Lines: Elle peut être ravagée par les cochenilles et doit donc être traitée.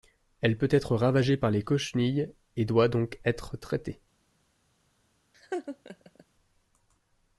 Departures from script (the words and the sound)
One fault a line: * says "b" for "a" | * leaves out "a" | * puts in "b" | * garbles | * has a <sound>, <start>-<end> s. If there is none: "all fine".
* has a laugh, 5.3-6.2 s